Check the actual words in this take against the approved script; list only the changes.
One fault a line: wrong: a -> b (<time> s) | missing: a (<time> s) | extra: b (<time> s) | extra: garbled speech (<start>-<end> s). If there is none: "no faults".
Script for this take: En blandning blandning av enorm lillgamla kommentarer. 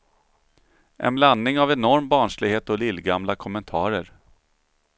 missing: blandning (1.6 s)
extra: barnslighet och (2.1 s)